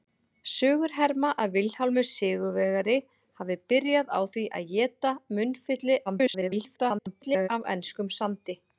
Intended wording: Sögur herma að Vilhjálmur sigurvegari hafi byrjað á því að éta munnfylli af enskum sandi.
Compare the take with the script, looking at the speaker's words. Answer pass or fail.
fail